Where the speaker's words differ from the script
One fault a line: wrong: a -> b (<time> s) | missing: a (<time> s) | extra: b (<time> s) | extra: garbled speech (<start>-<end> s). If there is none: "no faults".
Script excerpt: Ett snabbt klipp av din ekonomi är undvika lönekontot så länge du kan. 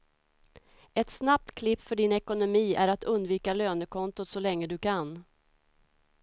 wrong: av -> för (1.8 s)
extra: att (2.9 s)